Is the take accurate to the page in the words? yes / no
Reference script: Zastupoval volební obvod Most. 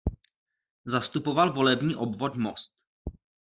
yes